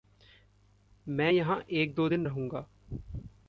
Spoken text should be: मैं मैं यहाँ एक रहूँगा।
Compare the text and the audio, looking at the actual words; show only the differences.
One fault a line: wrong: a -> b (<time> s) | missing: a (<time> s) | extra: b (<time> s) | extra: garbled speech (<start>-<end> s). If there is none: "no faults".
missing: मैं (1.3 s)
extra: दो दिन (1.9 s)